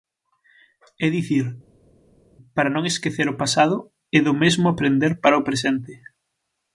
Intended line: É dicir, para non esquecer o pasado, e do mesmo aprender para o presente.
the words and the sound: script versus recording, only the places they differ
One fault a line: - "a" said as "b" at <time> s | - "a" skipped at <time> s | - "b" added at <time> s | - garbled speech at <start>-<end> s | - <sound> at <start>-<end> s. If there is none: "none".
none